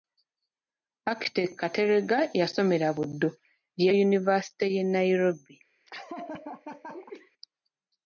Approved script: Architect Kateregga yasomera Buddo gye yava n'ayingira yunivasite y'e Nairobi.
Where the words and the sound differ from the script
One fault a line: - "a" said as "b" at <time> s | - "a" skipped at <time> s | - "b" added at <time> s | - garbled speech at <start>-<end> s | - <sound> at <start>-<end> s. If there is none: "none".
- "yava n'ayingira" skipped at 3.9 s
- laugh at 5.9-7.3 s